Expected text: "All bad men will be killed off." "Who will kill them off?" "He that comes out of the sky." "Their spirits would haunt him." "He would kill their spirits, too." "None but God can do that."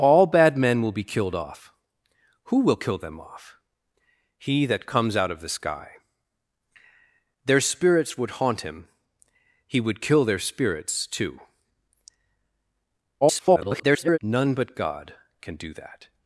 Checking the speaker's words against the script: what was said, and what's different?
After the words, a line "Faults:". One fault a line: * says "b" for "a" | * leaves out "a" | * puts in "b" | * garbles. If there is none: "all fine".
"All bad men will be killed off." "Who will kill them off?" "He that comes out of the sky." "Their spirits would haunt him." "He would kill their spirits, too." [garbled] "None but God can do that."
Faults:
* garbles